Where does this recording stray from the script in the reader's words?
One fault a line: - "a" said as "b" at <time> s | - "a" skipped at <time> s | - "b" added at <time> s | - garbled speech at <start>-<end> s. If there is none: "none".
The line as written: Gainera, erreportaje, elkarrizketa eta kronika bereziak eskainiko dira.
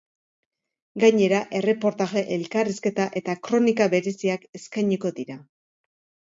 none